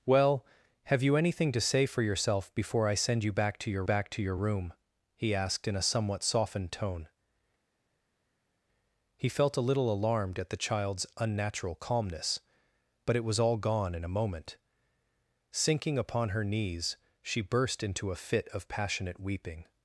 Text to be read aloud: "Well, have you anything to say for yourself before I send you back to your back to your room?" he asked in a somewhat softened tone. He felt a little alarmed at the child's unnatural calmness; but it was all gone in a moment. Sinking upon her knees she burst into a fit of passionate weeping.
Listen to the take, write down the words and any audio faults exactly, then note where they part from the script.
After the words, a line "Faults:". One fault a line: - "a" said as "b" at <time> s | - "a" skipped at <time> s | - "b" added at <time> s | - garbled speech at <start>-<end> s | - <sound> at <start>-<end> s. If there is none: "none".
"Well, have you anything to say for yourself before I send you back to your back to your room?" he asked in a somewhat softened tone. He felt a little alarmed at the child's unnatural calmness; but it was all gone in a moment. Sinking upon her knees she burst into a fit of passionate weeping.
Faults:
none